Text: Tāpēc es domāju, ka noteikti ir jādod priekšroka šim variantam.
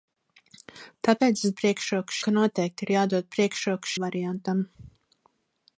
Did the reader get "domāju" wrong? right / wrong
wrong